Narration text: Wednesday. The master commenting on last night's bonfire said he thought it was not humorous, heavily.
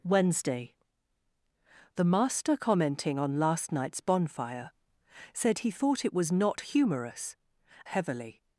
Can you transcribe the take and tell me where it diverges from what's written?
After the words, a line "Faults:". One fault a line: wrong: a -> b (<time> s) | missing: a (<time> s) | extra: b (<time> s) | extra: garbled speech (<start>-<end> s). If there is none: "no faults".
Wednesday. The master commenting on last night's bonfire said he thought it was not humorous, heavily.
Faults:
no faults